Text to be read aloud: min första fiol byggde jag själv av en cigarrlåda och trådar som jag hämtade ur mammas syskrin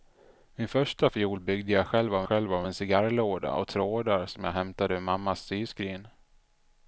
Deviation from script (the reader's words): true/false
true